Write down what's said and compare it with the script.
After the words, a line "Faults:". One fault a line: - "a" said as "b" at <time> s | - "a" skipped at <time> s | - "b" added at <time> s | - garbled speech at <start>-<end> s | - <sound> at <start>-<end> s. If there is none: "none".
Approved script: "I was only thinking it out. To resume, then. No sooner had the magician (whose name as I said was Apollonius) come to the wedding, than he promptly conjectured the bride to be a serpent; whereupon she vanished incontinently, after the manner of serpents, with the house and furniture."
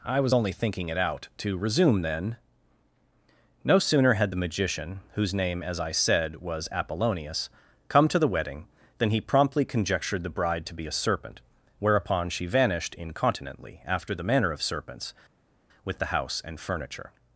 "I was only thinking it out. To resume, then. No sooner had the magician (whose name as I said was Apollonius) come to the wedding, than he promptly conjectured the bride to be a serpent; whereupon she vanished incontinently, after the manner of serpents, with the house and furniture."
Faults:
none